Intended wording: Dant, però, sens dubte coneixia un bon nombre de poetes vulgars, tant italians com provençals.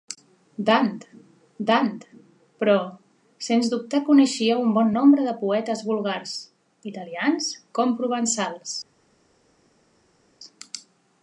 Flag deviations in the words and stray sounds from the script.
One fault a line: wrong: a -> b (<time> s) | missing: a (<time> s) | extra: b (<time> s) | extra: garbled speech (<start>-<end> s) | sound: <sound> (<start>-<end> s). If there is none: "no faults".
extra: dant (1.7 s)
missing: tant (6.3 s)